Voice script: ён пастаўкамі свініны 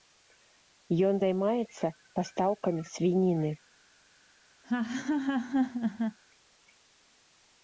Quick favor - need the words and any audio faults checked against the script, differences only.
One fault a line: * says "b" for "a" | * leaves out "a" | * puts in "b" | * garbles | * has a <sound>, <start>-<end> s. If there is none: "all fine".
* puts in "займаецца"
* has a laugh, 4.6-6.2 s